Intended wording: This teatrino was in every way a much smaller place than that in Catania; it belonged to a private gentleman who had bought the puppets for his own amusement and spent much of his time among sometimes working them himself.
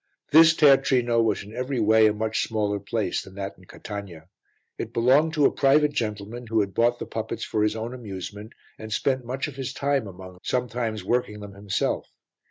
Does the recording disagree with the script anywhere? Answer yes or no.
no